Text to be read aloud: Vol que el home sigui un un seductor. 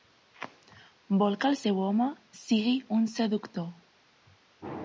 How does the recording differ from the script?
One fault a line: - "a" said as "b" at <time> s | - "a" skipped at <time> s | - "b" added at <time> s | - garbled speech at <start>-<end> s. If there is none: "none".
- "seu" added at 1.6 s
- "un" skipped at 3.1 s